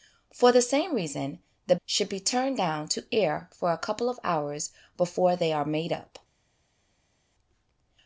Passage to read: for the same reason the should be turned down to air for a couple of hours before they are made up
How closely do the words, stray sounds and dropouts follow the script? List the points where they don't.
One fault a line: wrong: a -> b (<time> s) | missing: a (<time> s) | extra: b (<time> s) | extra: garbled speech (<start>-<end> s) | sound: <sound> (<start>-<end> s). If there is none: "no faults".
no faults